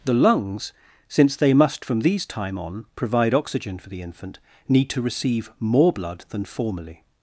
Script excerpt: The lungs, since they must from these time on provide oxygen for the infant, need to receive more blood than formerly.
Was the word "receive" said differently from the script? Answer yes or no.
no